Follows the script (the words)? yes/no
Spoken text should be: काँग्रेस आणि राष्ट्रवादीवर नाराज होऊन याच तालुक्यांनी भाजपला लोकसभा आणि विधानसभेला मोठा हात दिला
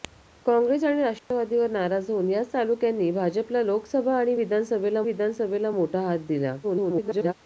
no